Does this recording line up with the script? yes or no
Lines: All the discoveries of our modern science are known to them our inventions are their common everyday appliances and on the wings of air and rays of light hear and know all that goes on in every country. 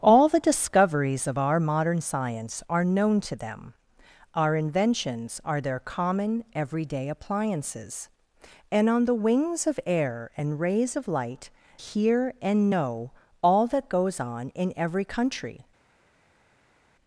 yes